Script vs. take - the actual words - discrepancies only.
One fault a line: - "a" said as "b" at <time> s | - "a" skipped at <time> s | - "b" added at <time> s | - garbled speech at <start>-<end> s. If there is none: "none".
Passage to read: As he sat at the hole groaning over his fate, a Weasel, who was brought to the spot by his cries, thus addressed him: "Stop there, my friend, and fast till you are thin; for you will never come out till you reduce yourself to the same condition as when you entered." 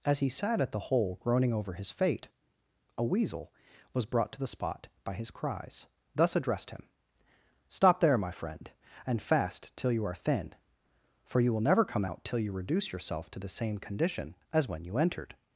- "who" skipped at 3.5 s